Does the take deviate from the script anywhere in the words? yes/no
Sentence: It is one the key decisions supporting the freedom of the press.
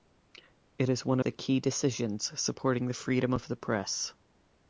no